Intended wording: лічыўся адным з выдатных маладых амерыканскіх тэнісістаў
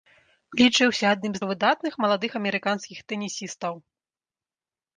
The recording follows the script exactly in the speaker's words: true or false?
true